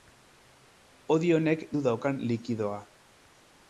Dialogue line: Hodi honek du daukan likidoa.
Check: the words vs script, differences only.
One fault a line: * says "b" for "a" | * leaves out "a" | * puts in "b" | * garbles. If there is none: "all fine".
all fine